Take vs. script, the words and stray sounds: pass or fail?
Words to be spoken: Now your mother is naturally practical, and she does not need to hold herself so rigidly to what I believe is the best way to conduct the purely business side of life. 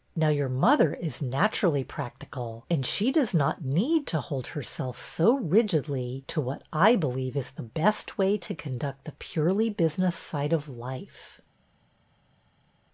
pass